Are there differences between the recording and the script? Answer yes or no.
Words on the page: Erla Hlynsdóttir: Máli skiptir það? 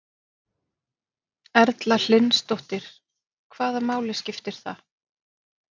yes